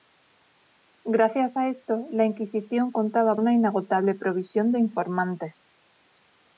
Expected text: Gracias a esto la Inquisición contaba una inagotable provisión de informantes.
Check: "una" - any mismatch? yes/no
no